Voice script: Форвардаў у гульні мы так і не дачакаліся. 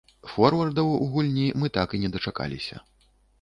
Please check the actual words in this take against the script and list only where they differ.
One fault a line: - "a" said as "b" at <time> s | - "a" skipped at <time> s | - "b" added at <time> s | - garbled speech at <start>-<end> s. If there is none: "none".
none